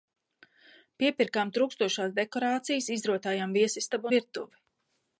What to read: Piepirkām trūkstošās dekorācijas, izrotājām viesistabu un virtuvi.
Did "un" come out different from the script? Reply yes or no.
yes